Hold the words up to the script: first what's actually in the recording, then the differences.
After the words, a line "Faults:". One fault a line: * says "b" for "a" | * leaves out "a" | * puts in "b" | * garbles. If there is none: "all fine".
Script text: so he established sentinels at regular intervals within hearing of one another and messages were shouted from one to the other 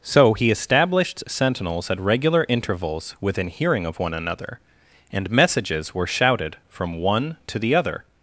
so he established sentinels at regular intervals within hearing of one another and messages were shouted from one to the other
Faults:
all fine